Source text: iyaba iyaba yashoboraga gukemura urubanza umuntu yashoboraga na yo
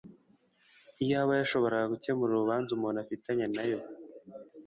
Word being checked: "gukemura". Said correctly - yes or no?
yes